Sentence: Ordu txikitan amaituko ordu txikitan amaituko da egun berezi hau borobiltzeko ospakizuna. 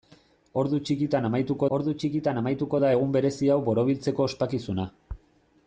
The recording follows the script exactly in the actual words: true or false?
true